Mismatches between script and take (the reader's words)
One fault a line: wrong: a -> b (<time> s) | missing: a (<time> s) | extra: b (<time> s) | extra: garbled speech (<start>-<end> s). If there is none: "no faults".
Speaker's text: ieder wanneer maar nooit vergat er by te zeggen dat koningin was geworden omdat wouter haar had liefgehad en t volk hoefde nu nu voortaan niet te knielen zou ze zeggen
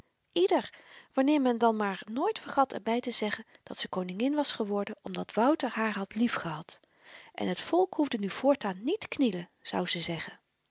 extra: men dan (1.4 s)
extra: ze (3.8 s)
missing: nu (8.3 s)